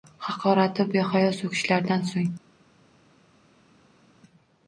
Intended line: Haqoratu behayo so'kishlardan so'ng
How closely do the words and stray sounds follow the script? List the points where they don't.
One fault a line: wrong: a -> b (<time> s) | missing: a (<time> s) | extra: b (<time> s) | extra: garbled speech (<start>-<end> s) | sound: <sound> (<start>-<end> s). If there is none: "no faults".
no faults